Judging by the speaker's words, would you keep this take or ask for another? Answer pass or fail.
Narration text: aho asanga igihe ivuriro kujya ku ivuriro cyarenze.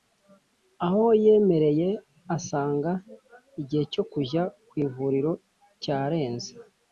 fail